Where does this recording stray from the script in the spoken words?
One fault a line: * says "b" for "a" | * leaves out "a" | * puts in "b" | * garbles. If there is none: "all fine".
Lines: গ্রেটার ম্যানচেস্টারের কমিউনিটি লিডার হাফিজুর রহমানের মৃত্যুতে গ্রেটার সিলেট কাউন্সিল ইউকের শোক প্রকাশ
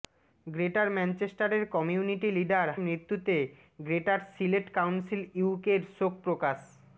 * leaves out "হাফিজুর রহমানের"